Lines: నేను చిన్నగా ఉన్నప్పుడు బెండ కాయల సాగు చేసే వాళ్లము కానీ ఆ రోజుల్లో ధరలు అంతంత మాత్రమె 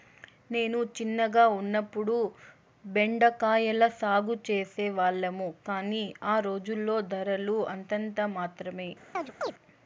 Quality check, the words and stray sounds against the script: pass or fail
fail